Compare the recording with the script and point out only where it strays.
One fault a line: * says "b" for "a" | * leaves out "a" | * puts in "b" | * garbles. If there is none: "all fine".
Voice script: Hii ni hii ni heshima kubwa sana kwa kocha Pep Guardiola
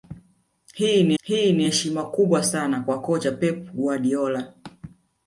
all fine